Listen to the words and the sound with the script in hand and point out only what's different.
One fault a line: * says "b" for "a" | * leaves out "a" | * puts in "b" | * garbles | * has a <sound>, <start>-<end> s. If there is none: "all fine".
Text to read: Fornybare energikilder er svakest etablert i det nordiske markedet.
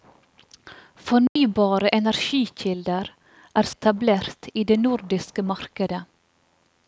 * has a dropout, 1.3-1.4 s
* leaves out "svakest"